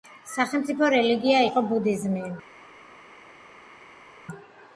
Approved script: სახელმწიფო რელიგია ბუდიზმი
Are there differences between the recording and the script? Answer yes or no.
yes